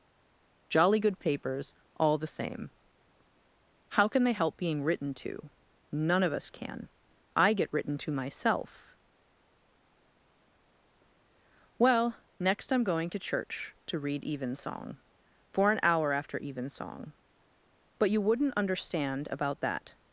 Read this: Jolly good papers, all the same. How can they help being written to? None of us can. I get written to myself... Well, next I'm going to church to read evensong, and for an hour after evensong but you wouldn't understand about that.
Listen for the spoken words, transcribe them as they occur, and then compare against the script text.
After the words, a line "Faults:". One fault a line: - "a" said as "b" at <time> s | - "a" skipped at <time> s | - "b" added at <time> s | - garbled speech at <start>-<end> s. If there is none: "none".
Jolly good papers, all the same. How can they help being written to? None of us can. I get written to myself... Well, next I'm going to church to read evensong, for an hour after evensong but you wouldn't understand about that.
Faults:
- "and" skipped at 15.0 s